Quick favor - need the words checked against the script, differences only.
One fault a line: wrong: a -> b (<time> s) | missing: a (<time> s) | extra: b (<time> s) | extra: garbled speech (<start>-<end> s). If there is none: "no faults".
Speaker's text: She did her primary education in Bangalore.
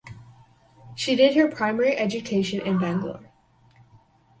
no faults